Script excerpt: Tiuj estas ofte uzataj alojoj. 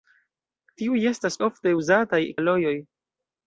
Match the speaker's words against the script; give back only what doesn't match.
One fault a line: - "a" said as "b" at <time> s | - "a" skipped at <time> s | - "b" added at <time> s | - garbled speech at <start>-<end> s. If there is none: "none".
none